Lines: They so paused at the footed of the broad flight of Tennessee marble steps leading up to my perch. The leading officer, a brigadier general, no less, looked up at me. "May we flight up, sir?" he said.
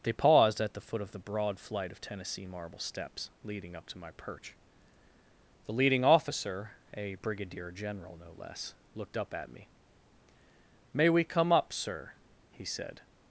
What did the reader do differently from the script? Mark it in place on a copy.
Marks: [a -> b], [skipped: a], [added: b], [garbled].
They [skipped: so] paused at the [footed -> foot] of the broad flight of Tennessee marble steps leading up to my perch. The leading officer, a brigadier general, no less, looked up at me. "May we [flight -> come] up, sir?" he said.